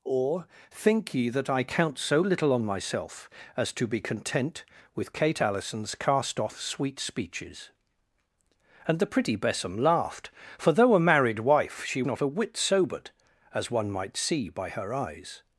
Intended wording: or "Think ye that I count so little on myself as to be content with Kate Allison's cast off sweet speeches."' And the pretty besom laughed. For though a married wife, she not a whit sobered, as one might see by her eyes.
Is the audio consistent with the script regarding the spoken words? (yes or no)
yes